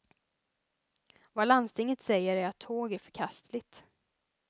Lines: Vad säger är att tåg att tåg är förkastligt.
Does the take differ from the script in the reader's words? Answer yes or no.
yes